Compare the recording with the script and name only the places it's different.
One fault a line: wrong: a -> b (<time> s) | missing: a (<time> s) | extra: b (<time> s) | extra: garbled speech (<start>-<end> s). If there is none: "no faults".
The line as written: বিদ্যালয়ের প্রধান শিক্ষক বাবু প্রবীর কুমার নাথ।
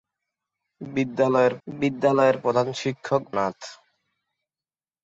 extra: বিদ্যালয়ের (1.7 s)
missing: বাবু প্রবীর কুমার (3.2 s)